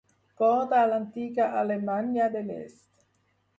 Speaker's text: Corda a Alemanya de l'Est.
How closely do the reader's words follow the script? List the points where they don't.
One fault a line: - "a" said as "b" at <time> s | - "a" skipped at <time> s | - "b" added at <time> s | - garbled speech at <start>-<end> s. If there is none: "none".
- "l'antiga" added at 0.9 s